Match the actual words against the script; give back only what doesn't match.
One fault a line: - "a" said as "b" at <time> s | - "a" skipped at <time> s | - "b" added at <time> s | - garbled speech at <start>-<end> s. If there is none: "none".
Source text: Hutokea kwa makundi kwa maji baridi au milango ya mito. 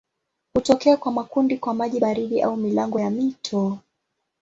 none